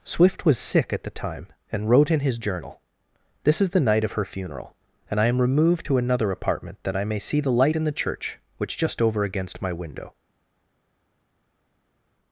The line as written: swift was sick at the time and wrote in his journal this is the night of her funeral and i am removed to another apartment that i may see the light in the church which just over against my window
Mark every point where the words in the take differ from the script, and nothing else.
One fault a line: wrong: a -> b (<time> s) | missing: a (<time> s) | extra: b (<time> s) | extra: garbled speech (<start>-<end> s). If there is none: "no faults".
no faults